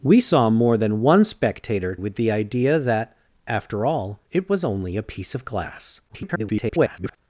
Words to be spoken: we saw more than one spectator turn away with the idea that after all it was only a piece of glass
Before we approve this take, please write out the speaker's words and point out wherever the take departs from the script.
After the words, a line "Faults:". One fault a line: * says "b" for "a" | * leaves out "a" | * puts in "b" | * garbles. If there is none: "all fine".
we saw more than one spectator with the idea that after all it was only a piece of glass [garbled]
Faults:
* leaves out "turn away"
* garbles